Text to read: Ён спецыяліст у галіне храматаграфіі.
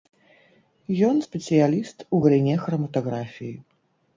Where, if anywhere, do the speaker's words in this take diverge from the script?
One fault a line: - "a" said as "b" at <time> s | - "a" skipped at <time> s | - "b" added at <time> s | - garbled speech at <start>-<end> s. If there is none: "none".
none